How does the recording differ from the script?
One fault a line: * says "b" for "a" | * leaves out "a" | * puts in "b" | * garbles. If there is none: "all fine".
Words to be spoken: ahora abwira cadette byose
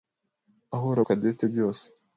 * leaves out "abwira"